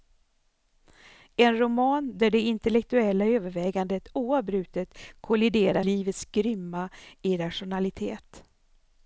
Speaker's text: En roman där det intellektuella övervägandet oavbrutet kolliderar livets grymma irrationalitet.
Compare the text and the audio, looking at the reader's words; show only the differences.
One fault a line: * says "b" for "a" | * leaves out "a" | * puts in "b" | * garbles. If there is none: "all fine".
all fine